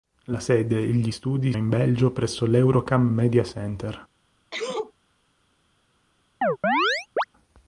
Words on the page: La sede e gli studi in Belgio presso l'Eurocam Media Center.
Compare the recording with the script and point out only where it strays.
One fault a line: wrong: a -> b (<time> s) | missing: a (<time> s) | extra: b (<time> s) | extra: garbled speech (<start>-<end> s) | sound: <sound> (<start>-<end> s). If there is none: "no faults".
sound: sneeze (4.5-4.9 s)
sound: chirp (6.4-7.2 s)